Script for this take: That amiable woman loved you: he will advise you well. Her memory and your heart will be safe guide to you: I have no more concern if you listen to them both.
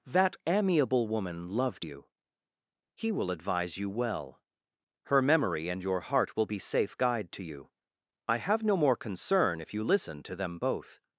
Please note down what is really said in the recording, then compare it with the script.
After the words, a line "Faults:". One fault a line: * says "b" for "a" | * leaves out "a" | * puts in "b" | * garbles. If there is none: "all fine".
That amiable woman loved you: he will advise you well. Her memory and your heart will be safe guide to you: I have no more concern if you listen to them both.
Faults:
all fine